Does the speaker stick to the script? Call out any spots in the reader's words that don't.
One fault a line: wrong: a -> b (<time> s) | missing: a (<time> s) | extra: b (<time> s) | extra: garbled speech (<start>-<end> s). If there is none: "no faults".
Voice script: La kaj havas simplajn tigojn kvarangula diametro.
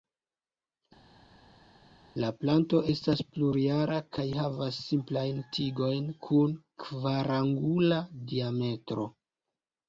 extra: planto estas plurjara (2.4 s)
extra: kun (6.3 s)